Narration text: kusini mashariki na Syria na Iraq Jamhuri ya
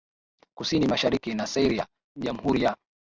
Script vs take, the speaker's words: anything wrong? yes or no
yes